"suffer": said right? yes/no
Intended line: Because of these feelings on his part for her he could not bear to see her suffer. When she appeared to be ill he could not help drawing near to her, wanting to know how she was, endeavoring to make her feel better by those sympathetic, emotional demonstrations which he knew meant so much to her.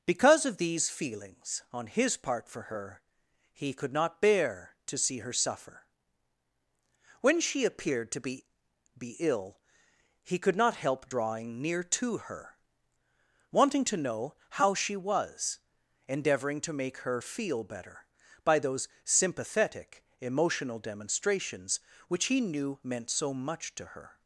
yes